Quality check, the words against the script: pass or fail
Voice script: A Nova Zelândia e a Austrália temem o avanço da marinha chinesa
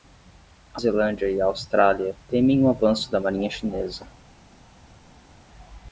fail